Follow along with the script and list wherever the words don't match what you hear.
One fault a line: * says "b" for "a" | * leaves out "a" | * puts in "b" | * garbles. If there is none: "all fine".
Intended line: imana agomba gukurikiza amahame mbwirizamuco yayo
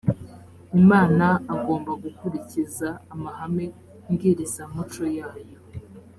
all fine